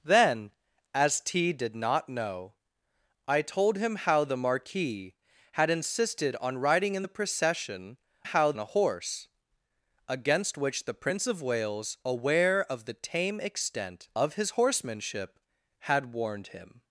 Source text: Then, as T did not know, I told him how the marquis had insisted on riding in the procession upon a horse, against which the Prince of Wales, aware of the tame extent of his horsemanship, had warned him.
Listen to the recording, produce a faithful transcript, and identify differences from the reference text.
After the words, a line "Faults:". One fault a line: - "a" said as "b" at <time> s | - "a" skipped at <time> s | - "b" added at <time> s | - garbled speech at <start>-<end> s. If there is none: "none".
Then, as T did not know, I told him how the marquis had insisted on riding in the procession how a horse, against which the Prince of Wales, aware of the tame extent of his horsemanship, had warned him.
Faults:
- "upon" said as "how" at 8.2 s